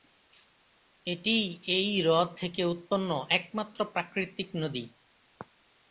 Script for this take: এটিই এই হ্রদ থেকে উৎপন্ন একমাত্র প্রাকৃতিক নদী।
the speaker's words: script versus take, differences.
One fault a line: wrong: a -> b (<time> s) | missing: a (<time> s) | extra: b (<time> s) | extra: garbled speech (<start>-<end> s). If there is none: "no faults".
no faults